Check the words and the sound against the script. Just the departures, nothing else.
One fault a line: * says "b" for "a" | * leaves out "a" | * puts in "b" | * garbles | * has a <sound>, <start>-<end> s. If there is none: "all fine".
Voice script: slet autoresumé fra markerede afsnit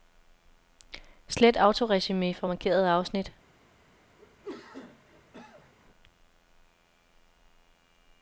* has a cough, 4.2-5.7 s